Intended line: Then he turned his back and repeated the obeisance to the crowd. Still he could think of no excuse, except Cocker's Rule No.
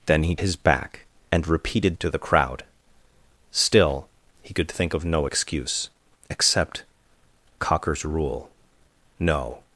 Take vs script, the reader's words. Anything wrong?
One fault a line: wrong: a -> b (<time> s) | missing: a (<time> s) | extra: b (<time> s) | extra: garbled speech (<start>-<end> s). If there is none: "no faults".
missing: turned (0.3 s)
missing: the obeisance (2.0 s)